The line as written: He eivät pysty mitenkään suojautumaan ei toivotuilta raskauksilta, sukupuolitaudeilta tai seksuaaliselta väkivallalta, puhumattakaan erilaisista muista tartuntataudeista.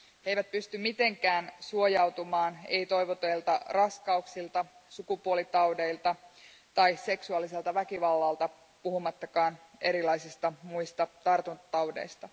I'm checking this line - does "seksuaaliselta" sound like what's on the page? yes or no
yes